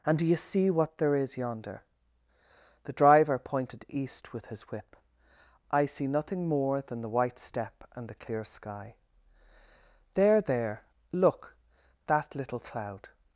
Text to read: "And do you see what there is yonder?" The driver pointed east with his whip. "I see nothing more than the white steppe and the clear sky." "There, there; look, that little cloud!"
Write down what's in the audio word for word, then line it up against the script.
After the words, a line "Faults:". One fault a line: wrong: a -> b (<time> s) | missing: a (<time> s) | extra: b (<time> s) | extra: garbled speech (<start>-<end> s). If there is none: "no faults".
"And do you see what there is yonder?" The driver pointed east with his whip. "I see nothing more than the white steppe and the clear sky." "There, there; look, that little cloud!"
Faults:
no faults